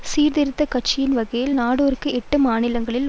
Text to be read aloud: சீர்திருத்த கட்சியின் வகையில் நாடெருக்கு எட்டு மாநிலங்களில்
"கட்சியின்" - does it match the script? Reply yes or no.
yes